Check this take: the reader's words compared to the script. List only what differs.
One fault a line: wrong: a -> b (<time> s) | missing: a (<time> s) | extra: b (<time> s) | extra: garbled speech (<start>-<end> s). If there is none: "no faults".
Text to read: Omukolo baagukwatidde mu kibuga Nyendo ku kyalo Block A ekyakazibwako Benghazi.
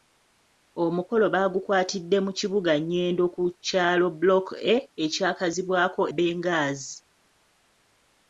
no faults